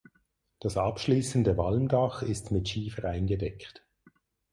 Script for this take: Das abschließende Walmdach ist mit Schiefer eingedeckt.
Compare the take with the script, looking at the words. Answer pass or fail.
pass